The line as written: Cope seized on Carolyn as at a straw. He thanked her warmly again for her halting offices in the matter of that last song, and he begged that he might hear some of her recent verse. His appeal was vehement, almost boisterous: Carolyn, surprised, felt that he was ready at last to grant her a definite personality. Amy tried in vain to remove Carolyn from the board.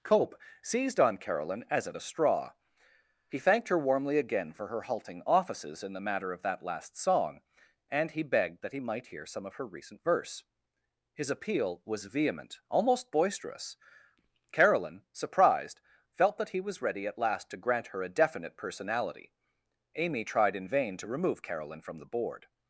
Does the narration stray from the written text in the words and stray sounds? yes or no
no